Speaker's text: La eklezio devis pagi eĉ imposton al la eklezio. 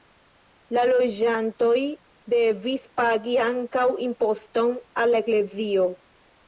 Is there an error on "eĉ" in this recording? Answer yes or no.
yes